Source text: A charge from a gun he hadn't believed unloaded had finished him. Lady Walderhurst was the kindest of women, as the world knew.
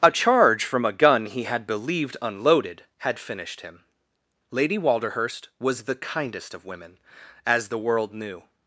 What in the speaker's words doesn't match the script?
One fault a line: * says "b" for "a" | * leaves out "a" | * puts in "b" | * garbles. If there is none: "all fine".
* says "had" for "hadn't"